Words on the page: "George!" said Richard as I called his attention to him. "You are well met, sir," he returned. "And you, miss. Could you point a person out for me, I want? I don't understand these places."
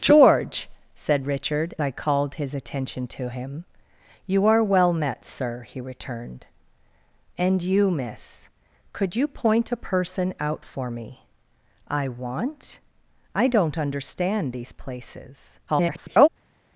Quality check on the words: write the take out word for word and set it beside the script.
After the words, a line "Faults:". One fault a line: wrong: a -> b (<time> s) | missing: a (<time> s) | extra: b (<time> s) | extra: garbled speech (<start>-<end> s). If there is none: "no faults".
"George!" said Richard I called his attention to him. "You are well met, sir," he returned. "And you, miss. Could you point a person out for me, I want? I don't understand these places." [garbled]
Faults:
missing: as (1.8 s)
extra: garbled speech (15.7-16.3 s)